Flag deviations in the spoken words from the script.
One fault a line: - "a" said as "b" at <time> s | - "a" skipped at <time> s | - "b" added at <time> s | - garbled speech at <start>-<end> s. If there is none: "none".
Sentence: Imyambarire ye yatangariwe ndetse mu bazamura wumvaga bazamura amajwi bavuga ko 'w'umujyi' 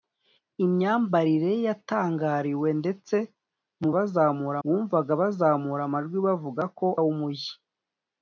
none